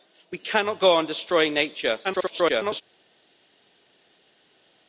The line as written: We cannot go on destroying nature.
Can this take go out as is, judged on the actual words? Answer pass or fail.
fail